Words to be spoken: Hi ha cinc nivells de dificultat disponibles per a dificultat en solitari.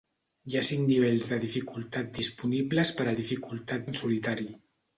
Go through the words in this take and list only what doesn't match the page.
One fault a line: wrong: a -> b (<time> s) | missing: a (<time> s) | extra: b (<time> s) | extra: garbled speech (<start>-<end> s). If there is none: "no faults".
no faults